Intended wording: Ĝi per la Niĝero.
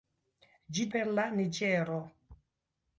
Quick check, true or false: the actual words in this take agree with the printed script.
true